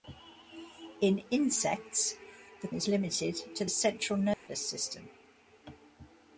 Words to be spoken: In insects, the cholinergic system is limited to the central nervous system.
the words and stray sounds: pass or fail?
fail